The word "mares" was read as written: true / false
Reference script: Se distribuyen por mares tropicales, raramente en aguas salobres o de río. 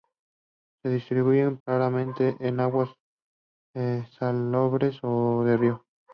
false